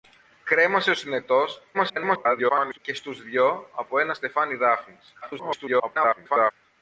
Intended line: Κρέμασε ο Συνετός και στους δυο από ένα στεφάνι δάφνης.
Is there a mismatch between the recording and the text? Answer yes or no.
yes